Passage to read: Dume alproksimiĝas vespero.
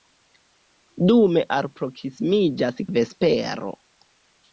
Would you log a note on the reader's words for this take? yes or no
no